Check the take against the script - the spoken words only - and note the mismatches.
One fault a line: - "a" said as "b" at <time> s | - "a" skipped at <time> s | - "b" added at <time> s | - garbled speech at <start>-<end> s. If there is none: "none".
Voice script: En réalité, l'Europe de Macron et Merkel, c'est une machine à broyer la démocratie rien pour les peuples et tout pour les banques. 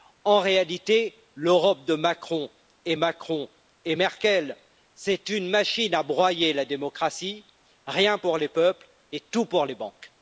- "Macron et" added at 2.9 s